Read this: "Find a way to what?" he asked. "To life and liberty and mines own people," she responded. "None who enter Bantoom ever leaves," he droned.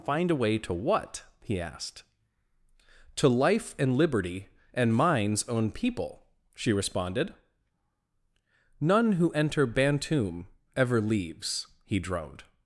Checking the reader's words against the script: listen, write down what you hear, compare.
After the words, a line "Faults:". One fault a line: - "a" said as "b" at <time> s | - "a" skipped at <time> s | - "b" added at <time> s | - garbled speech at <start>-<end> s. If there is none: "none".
"Find a way to what?" he asked. "To life and liberty and mines own people," she responded. "None who enter Bantoom ever leaves," he droned.
Faults:
none